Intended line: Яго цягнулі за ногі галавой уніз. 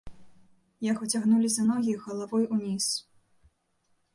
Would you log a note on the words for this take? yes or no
no